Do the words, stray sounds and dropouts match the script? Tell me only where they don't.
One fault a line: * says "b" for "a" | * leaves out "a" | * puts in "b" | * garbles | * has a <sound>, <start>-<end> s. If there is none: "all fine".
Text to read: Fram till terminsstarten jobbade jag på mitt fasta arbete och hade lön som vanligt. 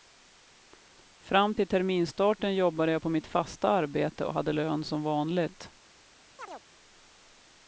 * has a chirp, 6.4-6.6 s